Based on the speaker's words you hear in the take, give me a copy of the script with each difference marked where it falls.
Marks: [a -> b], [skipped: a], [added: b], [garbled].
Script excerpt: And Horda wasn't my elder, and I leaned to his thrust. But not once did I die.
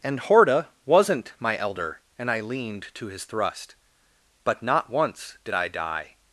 And Horda wasn't my elder, and I leaned to his thrust. But not once did I die.